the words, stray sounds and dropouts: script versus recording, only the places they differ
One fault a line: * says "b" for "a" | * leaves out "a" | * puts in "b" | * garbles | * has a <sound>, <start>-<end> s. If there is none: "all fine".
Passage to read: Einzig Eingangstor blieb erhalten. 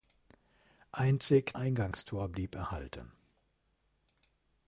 all fine